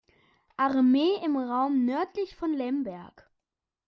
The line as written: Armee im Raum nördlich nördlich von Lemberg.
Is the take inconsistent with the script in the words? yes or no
yes